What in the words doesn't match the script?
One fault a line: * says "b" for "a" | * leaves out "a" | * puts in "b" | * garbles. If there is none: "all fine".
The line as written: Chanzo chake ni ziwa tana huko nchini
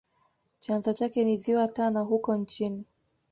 all fine